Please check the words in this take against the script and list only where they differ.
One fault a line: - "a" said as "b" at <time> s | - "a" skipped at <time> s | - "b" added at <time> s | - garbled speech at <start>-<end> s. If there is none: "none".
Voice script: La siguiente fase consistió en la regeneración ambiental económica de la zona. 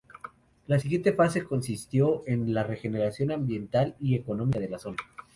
- "y" added at 4.0 s